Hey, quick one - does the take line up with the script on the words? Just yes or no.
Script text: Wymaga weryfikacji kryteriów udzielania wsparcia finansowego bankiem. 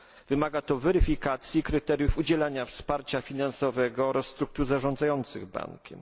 no